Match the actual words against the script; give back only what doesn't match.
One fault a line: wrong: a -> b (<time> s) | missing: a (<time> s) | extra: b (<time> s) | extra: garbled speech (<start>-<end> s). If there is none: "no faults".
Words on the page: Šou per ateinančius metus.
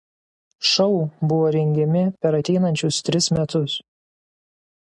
extra: buvo rengiami (1.3 s)
extra: tris (3.1 s)